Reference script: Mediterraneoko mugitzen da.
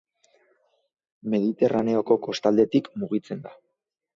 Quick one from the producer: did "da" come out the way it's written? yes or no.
yes